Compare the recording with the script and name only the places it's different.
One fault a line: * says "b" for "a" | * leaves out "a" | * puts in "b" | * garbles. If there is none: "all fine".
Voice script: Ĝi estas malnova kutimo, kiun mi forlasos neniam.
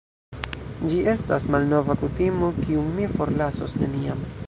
all fine